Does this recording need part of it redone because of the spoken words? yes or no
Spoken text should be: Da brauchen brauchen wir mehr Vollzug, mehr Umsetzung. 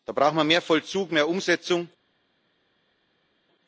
yes